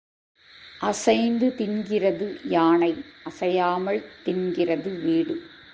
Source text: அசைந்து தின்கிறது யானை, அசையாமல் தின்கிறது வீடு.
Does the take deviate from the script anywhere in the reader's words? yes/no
no